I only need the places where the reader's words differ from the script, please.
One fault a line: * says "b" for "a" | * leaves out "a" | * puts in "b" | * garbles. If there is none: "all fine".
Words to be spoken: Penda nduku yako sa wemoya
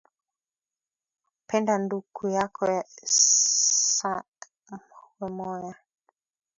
all fine